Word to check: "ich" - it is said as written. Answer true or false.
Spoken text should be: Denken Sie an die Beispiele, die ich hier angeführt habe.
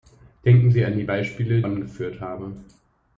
false